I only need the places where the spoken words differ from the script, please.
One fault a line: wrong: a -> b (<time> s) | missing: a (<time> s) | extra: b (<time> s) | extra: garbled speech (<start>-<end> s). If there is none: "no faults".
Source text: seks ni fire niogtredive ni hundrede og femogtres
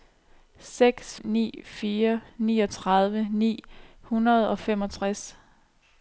no faults